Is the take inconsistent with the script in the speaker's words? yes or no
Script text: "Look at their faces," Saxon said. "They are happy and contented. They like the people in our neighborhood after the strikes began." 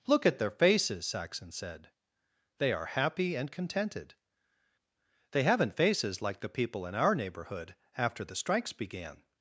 yes